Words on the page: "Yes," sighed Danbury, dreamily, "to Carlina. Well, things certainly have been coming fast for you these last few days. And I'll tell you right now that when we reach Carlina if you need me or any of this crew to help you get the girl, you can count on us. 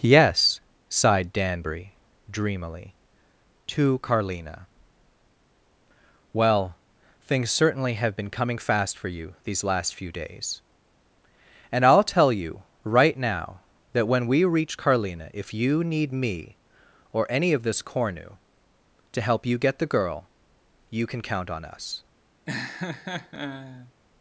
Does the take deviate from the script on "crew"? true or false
true